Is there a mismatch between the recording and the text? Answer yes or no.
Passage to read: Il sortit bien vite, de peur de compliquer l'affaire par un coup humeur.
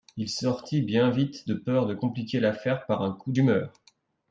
no